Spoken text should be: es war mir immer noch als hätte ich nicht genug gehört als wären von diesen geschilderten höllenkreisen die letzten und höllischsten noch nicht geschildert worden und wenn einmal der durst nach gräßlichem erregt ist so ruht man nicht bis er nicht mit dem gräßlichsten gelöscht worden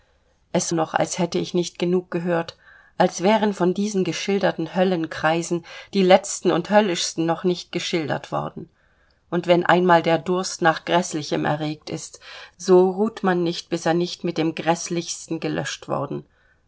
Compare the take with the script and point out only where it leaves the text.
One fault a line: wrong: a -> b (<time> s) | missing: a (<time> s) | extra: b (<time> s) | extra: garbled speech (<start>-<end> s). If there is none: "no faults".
missing: war mir immer (0.7 s)